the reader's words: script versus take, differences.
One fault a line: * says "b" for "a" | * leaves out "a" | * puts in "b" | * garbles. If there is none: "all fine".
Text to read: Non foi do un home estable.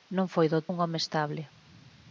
all fine